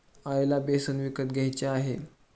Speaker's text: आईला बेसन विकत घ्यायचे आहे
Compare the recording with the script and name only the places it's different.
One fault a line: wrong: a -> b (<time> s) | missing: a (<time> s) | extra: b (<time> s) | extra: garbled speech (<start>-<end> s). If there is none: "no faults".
no faults